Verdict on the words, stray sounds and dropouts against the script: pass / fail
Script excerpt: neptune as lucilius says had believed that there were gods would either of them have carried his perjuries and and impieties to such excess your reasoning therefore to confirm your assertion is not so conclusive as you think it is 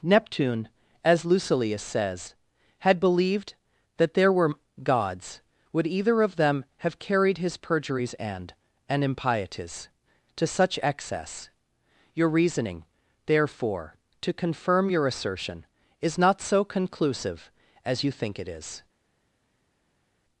pass